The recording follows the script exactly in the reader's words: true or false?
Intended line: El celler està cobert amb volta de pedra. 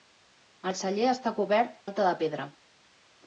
false